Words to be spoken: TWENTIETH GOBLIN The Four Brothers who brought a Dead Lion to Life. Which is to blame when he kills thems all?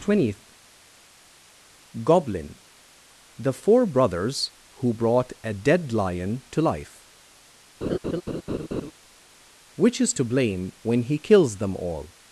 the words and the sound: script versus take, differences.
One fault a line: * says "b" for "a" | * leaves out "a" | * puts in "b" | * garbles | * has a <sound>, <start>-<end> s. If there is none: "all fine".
* has a laugh, 7.8-8.9 s
* says "them" for "thems"